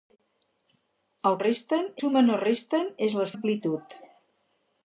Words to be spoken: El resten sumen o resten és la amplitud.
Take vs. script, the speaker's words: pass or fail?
pass